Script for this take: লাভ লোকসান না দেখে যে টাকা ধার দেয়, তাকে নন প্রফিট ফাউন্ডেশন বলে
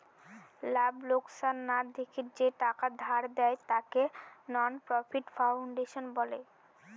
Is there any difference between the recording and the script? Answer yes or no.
no